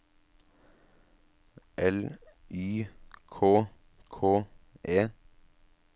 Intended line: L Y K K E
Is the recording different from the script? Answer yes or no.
no